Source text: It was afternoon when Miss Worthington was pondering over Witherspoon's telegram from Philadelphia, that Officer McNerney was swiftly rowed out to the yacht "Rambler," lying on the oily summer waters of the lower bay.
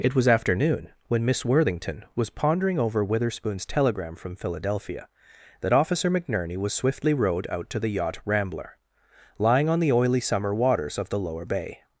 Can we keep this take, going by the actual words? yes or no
yes